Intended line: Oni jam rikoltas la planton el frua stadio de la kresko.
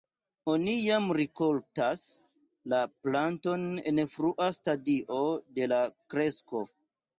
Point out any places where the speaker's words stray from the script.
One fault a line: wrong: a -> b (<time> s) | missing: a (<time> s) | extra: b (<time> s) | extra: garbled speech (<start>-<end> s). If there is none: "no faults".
wrong: el -> en (3.9 s)